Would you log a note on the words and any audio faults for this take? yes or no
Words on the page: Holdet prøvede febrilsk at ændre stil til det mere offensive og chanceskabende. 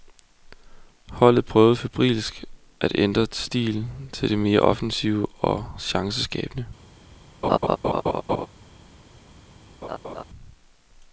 yes